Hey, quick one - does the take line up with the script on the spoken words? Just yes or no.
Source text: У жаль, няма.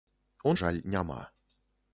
yes